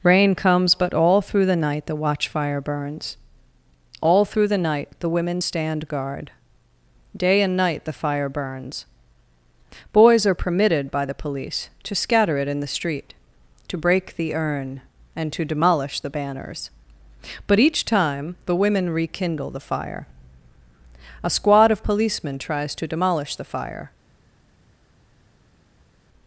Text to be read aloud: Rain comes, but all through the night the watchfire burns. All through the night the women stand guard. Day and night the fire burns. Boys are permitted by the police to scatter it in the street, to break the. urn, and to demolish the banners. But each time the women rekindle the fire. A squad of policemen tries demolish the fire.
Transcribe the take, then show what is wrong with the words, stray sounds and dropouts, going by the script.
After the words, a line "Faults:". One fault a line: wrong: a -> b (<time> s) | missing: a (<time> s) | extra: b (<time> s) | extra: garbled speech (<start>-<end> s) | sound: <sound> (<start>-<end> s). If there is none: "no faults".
Rain comes, but all through the night the watchfire burns. All through the night the women stand guard. Day and night the fire burns. Boys are permitted by the police to scatter it in the street, to break the. urn, and to demolish the banners. But each time the women rekindle the fire. A squad of policemen tries to demolish the fire.
Faults:
extra: to (22.7 s)